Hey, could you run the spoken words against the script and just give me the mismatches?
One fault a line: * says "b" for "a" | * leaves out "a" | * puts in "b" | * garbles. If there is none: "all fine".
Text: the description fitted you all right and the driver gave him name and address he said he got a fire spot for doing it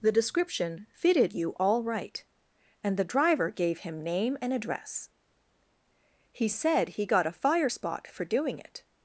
all fine